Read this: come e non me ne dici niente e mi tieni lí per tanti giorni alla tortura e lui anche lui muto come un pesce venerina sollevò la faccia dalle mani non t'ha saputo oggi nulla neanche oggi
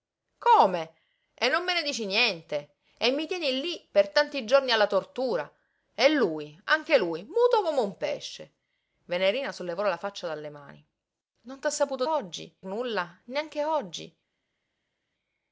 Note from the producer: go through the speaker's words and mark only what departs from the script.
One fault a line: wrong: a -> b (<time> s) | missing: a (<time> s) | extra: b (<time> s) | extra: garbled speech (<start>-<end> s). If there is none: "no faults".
no faults